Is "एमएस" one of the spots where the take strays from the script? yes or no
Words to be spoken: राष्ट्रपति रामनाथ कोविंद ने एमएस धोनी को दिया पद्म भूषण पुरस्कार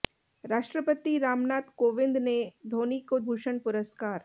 yes